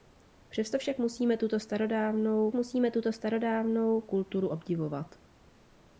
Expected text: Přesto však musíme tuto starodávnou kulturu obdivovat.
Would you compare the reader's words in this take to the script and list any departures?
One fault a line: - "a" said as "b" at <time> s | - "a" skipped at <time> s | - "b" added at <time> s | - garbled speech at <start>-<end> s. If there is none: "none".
- "musíme tuto starodávnou" added at 2.5 s